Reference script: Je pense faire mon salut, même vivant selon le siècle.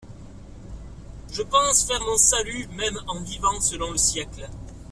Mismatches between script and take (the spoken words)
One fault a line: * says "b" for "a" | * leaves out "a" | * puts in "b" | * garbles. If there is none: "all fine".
* puts in "en"